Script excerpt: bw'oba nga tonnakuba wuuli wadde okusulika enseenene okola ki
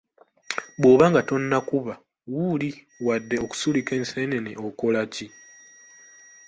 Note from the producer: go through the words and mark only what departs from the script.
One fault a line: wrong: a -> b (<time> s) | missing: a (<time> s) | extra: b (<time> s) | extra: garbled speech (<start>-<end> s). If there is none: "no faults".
no faults